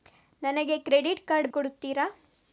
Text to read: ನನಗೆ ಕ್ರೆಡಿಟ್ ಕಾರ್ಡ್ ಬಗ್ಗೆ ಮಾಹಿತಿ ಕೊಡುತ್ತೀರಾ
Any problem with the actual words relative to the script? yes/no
yes